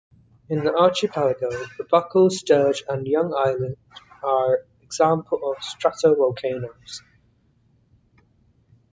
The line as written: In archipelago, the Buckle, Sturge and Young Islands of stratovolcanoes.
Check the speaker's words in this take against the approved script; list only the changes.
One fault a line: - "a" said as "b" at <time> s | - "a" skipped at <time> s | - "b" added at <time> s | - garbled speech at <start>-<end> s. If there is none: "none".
- "the" added at 0.6 s
- "are examples" added at 4.2 s